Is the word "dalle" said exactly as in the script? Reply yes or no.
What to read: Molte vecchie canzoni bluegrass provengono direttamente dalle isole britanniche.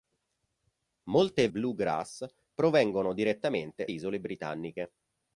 no